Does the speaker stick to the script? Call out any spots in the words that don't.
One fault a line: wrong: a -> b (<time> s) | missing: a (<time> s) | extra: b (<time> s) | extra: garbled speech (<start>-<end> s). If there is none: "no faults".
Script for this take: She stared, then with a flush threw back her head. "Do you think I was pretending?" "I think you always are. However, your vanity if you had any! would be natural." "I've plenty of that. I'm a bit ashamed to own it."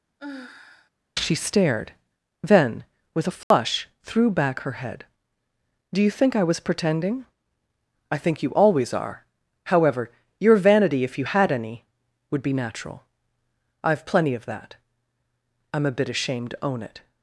no faults